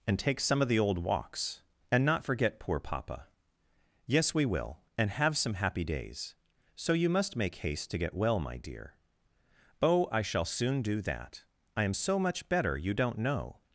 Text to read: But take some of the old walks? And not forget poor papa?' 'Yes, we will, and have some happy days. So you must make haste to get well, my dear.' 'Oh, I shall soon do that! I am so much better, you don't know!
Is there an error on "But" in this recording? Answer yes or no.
yes